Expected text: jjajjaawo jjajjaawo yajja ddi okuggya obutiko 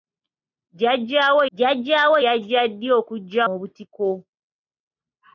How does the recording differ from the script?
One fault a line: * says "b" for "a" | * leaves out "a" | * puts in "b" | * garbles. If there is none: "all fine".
all fine